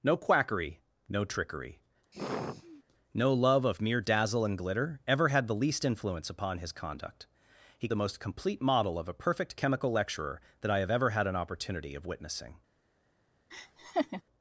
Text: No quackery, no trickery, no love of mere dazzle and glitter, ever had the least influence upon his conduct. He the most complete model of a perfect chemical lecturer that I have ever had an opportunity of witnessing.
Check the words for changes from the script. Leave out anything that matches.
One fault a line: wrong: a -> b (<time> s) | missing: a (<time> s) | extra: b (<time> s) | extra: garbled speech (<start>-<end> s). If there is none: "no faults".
no faults